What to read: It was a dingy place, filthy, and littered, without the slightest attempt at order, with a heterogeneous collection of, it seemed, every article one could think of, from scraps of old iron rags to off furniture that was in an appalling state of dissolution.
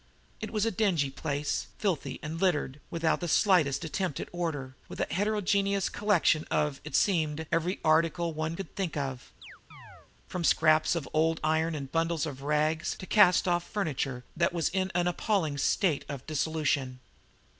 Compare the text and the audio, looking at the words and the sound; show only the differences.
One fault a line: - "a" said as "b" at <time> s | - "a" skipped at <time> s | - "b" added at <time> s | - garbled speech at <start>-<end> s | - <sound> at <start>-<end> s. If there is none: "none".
- chirp at 9.4-10.1 s
- "and bundles of" added at 11.7 s
- "cast" added at 13.1 s